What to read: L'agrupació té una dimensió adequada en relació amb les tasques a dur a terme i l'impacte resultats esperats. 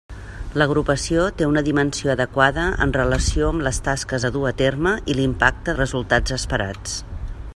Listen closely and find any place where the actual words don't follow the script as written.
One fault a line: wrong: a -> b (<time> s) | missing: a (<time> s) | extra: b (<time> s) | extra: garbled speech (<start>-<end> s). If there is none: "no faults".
no faults